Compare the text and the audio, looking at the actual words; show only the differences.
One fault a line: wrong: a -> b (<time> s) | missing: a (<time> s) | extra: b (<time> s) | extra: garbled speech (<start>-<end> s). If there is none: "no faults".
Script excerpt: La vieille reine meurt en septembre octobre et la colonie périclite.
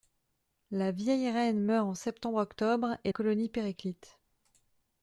missing: la (3.1 s)